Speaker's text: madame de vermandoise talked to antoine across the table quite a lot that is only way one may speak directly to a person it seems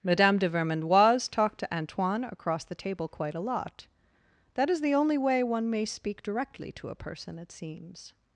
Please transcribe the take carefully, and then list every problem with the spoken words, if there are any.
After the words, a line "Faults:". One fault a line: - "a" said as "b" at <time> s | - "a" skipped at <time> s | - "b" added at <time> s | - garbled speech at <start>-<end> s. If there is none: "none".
madame de vermandoise talked to antoine across the table quite a lot that is the only way one may speak directly to a person it seems
Faults:
- "the" added at 4.8 s